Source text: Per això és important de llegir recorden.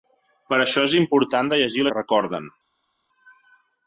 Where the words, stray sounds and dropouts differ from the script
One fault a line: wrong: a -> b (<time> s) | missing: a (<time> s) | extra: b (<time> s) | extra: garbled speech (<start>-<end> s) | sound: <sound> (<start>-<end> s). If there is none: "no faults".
no faults